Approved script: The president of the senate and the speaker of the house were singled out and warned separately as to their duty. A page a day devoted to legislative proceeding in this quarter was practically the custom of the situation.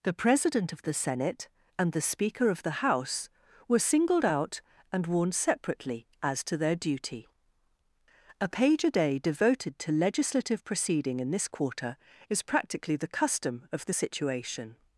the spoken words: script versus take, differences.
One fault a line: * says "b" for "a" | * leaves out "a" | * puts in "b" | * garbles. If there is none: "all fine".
* says "is" for "was"